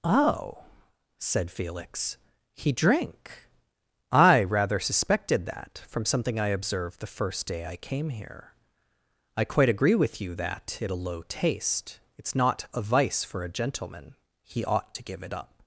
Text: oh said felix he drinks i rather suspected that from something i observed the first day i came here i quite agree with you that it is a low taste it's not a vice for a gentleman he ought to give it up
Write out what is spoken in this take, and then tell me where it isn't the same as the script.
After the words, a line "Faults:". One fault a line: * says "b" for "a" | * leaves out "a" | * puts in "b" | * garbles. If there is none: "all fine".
oh said felix he drink i rather suspected that from something i observed the first day i came here i quite agree with you that it a low taste it's not a vice for a gentleman he ought to give it up
Faults:
* says "drink" for "drinks"
* leaves out "is"